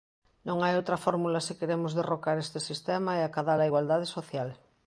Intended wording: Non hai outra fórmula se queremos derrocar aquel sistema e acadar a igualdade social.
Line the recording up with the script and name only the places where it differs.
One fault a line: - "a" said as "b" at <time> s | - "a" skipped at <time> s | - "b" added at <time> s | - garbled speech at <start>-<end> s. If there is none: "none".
- "aquel" said as "este" at 2.4 s